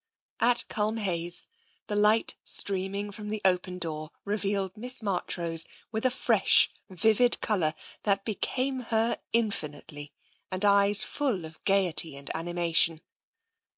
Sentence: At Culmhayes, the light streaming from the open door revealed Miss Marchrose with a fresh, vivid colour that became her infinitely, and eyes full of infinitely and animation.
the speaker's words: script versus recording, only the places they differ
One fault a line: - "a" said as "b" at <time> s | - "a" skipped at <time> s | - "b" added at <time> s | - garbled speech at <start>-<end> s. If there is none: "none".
- "infinitely" said as "gaiety" at 11.7 s